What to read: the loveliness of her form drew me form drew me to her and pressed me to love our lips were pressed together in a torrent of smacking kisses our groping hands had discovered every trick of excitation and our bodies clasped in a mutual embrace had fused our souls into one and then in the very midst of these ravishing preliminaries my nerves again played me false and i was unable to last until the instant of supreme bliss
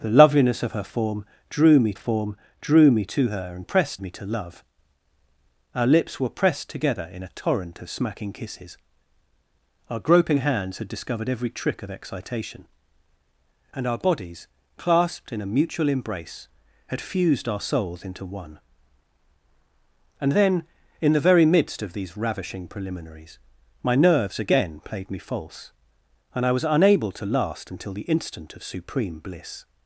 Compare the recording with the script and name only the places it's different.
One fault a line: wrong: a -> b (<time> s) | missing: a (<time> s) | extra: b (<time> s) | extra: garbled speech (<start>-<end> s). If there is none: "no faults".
no faults